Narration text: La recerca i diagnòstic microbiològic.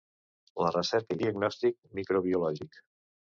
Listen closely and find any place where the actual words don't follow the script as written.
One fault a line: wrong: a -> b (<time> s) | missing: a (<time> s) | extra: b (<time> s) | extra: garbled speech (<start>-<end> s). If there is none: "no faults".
no faults